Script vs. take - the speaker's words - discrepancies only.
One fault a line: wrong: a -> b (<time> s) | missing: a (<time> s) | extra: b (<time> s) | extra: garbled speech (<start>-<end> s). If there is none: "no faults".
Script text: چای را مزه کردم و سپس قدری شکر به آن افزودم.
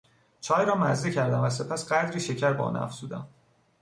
no faults